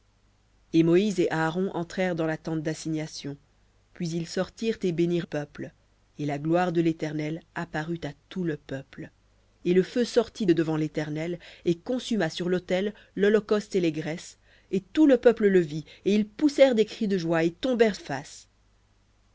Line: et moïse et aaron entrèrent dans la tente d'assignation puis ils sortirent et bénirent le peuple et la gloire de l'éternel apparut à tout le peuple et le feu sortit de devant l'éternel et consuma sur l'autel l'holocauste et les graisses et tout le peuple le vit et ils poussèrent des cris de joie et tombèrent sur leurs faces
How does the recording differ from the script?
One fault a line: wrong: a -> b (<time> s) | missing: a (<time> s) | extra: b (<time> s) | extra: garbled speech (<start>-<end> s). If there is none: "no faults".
missing: le (5.3 s)
missing: sur leurs (18.0 s)